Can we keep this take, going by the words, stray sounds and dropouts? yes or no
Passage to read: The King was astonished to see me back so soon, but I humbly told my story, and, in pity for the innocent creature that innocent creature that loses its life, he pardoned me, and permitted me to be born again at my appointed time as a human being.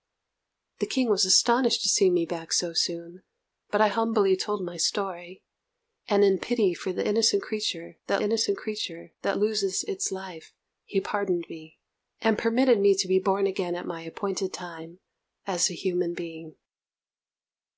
yes